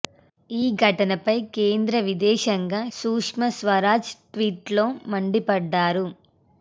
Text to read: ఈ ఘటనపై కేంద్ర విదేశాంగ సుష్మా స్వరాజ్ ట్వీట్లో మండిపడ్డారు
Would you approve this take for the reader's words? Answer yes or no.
yes